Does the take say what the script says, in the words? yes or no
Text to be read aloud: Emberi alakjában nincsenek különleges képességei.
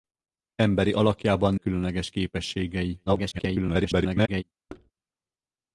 no